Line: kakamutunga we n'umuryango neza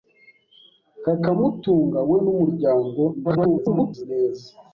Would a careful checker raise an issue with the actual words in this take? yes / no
yes